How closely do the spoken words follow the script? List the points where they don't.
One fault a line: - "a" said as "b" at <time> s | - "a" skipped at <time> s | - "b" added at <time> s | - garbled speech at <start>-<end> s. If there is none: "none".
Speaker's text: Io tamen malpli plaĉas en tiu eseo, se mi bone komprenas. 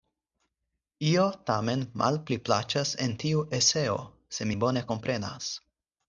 none